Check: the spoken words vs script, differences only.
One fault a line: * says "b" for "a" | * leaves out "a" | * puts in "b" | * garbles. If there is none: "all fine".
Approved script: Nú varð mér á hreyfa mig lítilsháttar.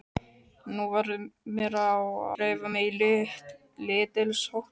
all fine